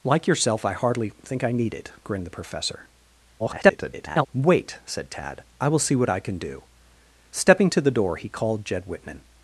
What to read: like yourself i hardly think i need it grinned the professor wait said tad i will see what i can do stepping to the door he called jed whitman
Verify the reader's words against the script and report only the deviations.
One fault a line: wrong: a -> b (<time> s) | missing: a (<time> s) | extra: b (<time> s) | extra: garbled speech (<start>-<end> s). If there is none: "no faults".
extra: garbled speech (3.4-4.3 s)